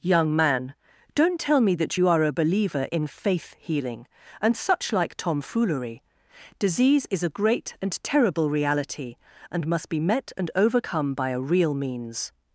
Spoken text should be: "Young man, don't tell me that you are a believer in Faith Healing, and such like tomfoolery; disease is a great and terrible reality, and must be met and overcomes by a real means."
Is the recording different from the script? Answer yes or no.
yes